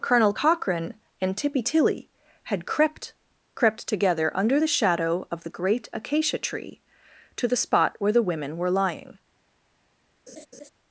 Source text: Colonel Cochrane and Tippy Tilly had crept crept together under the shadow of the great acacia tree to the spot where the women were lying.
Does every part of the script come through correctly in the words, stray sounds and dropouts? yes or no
no